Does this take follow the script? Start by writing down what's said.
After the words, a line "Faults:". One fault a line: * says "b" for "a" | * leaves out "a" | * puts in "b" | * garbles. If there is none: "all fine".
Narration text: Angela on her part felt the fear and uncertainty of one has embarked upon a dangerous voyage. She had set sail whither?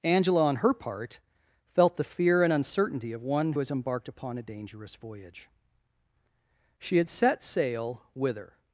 Angela on her part felt the fear and uncertainty of one has embarked upon a dangerous voyage. She had set sail whither?
Faults:
all fine